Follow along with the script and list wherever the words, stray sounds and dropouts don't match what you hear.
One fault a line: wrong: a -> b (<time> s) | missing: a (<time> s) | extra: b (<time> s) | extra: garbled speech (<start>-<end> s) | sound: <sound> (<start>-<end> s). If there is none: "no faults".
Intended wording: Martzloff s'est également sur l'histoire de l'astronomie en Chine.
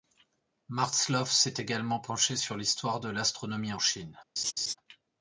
extra: penché (2.0 s)
sound: laugh (4.4-4.8 s)